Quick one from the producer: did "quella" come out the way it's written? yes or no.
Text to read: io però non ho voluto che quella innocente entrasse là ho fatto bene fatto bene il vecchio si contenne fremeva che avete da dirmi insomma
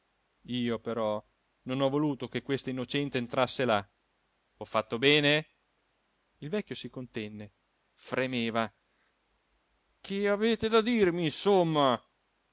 no